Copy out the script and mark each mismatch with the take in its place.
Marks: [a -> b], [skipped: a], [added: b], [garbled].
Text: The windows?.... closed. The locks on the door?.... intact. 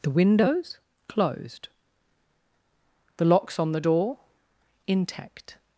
The windows?.... closed. The locks on the door?.... intact.